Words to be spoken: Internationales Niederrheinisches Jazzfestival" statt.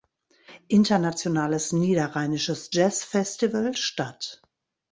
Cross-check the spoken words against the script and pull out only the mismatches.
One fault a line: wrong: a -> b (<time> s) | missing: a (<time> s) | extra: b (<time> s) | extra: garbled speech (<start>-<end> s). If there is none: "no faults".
no faults